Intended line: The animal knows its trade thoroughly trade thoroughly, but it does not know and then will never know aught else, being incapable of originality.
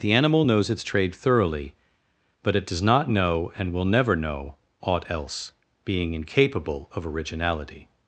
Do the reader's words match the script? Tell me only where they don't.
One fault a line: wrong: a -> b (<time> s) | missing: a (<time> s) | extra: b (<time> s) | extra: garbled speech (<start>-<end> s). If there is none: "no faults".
missing: trade thoroughly (1.7 s)
missing: then (3.7 s)